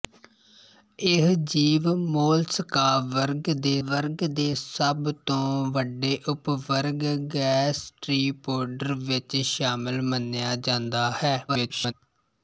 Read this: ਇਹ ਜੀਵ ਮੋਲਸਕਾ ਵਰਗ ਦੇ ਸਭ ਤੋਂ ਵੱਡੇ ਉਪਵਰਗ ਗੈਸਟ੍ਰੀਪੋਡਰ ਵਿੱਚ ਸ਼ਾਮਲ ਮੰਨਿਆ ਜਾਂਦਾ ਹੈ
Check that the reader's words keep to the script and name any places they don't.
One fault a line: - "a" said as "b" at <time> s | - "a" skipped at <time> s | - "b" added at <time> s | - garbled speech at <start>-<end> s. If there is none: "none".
- "ਵਰਗ ਦੇ" added at 3.8 s
- garbled speech at 11.5-11.9 s